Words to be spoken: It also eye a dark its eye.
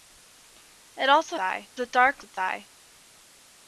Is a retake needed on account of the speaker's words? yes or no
no